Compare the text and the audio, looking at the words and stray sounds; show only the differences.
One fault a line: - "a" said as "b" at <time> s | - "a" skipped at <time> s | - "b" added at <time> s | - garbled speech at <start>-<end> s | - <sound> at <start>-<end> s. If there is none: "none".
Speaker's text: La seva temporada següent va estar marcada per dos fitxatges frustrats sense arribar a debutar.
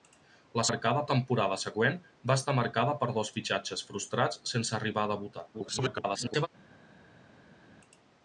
- "seva" said as "marcada" at 0.7 s
- garbled speech at 5.5-6.5 s